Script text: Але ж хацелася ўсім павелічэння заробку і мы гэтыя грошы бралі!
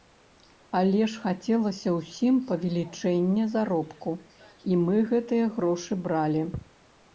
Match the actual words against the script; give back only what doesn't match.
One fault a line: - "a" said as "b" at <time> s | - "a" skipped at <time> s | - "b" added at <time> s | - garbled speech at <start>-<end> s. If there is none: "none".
none